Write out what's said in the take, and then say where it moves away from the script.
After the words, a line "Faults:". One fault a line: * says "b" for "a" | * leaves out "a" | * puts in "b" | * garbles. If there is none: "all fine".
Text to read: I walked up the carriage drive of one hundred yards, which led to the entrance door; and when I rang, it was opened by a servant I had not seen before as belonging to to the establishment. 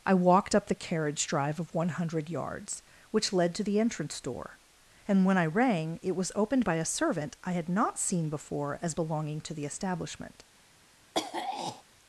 I walked up the carriage drive of one hundred yards, which led to the entrance door; and when I rang, it was opened by a servant I had not seen before as belonging to the establishment.
Faults:
* leaves out "to"